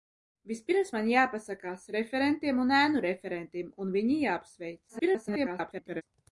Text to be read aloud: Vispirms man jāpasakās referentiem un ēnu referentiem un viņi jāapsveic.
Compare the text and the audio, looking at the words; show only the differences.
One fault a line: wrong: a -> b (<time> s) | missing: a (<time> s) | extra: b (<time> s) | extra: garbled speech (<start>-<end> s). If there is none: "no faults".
extra: garbled speech (4.9-6.0 s)